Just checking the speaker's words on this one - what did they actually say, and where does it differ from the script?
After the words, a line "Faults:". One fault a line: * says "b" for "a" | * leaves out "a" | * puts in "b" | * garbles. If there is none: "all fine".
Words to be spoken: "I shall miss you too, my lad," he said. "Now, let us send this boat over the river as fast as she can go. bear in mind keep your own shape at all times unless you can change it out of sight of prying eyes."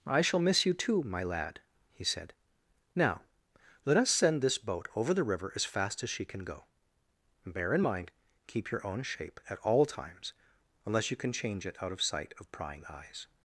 "I shall miss you too, my lad," he said. "Now, let us send this boat over the river as fast as she can go. bear in mind keep your own shape at all times unless you can change it out of sight of prying eyes."
Faults:
all fine